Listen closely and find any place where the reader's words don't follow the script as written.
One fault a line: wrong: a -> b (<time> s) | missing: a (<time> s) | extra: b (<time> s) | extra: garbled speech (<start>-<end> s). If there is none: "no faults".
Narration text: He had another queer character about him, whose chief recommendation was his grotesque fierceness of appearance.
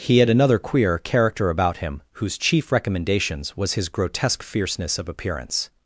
wrong: recommendation -> recommendations (2.7 s)